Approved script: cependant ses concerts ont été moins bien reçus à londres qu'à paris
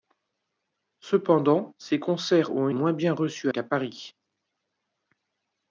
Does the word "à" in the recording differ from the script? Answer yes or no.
yes